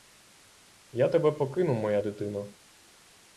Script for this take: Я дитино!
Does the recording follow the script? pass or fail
fail